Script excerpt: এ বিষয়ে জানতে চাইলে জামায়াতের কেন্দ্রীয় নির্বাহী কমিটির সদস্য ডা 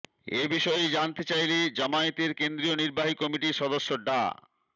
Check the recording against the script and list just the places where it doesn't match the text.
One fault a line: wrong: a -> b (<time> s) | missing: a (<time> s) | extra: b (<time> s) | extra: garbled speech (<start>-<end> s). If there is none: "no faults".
no faults